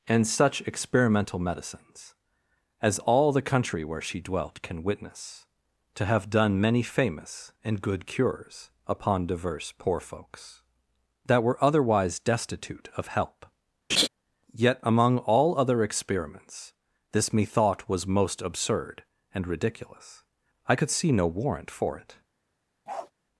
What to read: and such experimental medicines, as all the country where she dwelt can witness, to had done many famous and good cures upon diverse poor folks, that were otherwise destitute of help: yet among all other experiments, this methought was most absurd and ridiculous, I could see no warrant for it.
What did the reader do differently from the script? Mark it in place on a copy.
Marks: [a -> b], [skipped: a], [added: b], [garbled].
and such experimental medicines, as all the country where she dwelt can witness, to [had -> have] done many famous and good cures upon diverse poor folks, that were otherwise destitute of help: yet among all other experiments, this methought was most absurd and ridiculous, I could see no warrant for it.